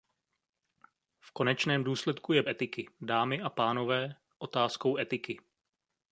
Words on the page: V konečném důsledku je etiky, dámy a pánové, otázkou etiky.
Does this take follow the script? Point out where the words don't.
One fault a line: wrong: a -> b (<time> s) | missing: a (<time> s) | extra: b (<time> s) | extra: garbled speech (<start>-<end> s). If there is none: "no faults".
no faults